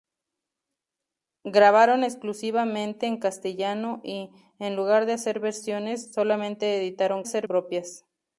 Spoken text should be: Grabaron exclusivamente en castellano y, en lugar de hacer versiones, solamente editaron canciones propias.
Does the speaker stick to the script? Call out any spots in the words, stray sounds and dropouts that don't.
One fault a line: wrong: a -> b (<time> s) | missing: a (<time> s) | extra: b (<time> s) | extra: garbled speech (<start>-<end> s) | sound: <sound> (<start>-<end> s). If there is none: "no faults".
wrong: canciones -> hacer (7.2 s)